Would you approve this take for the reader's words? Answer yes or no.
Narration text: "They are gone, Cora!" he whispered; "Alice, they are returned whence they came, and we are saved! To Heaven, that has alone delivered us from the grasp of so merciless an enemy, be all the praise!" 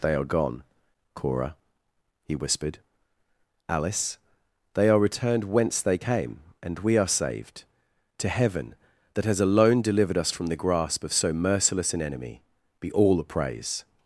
yes